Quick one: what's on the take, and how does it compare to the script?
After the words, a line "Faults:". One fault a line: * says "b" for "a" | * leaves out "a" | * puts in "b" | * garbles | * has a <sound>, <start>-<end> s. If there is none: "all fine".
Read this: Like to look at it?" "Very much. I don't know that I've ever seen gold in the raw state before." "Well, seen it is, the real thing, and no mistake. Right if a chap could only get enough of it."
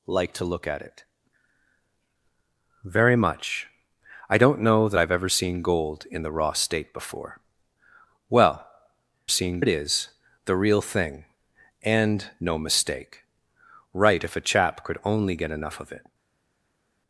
Like to look at it?" "Very much. I don't know that I've ever seen gold in the raw state before." "Well, seen it is, the real thing, and no mistake. Right if a chap could only get enough of it."
Faults:
all fine